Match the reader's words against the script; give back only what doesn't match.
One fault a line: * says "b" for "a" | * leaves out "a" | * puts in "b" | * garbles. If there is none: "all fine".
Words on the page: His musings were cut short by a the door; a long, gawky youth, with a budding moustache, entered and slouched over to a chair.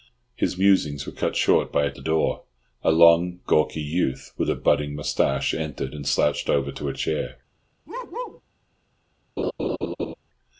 all fine